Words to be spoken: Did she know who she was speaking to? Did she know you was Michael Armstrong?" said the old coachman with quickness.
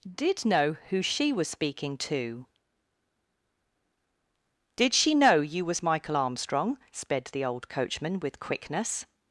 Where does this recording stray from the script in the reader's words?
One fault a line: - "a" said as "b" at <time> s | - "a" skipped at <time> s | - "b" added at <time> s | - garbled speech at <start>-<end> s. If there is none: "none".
- "she" skipped at 0.5 s
- "said" said as "sped" at 6.9 s